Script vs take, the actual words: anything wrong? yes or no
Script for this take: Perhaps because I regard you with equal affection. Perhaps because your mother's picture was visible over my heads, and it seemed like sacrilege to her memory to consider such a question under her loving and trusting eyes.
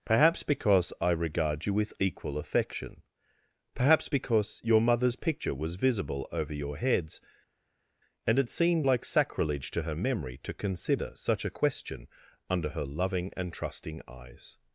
yes